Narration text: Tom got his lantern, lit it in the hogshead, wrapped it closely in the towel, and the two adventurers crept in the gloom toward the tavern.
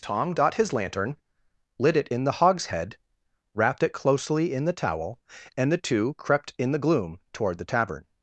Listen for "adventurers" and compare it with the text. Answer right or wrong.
wrong